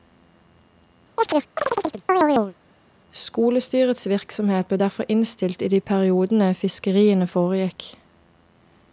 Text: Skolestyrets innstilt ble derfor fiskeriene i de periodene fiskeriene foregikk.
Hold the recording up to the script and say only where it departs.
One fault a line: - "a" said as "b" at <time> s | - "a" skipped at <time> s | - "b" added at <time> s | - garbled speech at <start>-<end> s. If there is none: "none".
- "innstilt" said as "virksomhet" at 4.1 s
- "fiskeriene" said as "innstilt" at 5.1 s